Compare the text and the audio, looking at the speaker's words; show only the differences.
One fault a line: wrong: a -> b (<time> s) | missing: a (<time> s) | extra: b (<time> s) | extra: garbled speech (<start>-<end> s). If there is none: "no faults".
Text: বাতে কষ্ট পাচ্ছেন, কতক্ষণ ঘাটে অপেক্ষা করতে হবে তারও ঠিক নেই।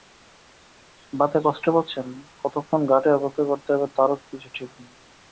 extra: কিছু (4.3 s)